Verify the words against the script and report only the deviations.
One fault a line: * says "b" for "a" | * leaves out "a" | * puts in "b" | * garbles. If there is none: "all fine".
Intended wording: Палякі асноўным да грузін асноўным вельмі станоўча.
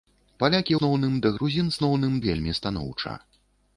all fine